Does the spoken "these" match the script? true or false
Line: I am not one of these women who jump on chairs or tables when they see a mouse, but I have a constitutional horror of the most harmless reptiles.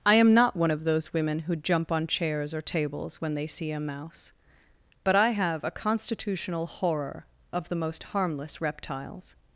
false